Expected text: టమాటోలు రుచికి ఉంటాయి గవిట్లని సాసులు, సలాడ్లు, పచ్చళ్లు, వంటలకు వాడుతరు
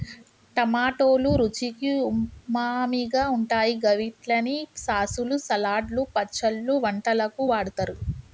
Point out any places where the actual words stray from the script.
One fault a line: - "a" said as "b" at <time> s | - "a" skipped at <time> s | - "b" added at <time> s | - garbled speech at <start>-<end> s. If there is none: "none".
- "ఉమామిగా" added at 2.1 s